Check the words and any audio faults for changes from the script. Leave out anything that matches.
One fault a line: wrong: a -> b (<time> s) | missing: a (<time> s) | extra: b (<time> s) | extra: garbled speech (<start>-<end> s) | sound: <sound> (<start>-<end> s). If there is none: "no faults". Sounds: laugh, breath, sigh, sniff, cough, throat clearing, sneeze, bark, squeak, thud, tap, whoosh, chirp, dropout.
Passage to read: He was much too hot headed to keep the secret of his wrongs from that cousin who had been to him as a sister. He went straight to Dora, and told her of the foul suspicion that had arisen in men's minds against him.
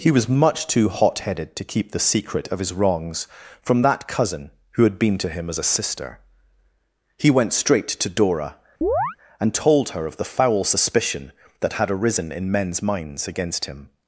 sound: chirp (8.8-9.2 s)